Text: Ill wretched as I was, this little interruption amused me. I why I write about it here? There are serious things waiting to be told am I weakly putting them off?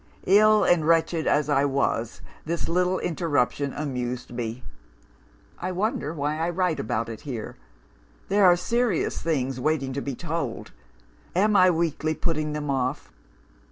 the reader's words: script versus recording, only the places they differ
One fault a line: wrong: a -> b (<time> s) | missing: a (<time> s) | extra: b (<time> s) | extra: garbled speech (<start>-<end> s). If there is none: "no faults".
extra: and (0.6 s)
extra: wonder (5.7 s)